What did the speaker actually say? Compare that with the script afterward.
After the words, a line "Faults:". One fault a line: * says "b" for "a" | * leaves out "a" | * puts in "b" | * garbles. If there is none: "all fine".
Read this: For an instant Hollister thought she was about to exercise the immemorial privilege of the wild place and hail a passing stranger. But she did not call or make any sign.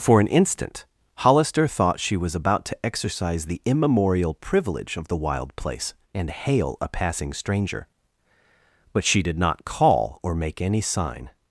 For an instant Hollister thought she was about to exercise the immemorial privilege of the wild place and hail a passing stranger. But she did not call or make any sign.
Faults:
all fine